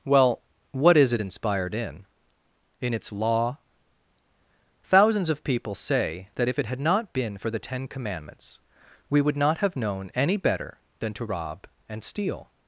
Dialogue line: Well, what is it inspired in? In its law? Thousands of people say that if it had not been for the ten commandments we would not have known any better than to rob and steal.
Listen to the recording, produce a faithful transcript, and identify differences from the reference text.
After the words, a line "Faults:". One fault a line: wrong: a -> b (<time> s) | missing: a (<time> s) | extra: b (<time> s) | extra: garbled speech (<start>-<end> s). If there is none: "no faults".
Well, what is it inspired in? In its law? Thousands of people say that if it had not been for the ten commandments we would not have known any better than to rob and steal.
Faults:
no faults